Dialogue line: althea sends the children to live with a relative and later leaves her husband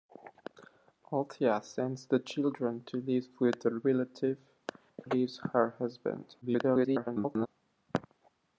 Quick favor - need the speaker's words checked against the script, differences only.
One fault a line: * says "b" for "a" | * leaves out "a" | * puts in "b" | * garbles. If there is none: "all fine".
* leaves out "and later"
* garbles